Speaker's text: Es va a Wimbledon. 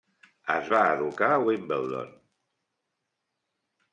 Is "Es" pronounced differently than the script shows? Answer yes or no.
no